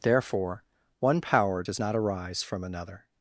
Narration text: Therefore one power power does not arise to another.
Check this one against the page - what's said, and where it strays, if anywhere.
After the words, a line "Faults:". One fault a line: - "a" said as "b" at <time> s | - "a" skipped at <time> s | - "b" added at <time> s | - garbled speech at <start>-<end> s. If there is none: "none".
Therefore one power does not arise from another.
Faults:
- "power" skipped at 1.6 s
- "to" said as "from" at 2.4 s